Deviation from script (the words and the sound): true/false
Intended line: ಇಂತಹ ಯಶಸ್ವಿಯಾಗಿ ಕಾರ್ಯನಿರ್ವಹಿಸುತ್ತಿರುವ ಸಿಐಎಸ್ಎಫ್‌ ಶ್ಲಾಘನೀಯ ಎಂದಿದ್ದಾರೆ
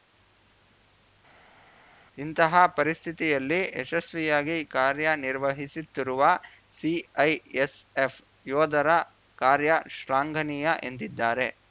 true